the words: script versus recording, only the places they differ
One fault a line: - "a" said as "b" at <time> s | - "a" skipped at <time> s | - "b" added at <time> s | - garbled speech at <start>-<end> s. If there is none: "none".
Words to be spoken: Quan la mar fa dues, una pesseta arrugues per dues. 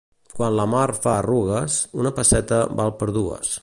- "dues" said as "arrugues" at 1.1 s
- "arrugues" said as "val" at 2.8 s